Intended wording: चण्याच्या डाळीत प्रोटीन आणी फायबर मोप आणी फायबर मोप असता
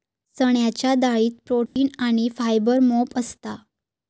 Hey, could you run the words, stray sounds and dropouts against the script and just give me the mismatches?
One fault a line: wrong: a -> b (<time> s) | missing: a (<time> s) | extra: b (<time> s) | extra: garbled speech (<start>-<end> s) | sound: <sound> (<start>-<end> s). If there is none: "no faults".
sound: dropout (1.7-1.8 s)
missing: आणी फायबर मोप (3.2 s)